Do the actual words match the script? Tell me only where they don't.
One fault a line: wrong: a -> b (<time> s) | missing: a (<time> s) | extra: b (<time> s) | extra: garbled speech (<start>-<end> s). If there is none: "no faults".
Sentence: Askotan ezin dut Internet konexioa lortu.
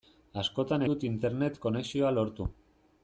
missing: ezin (0.8 s)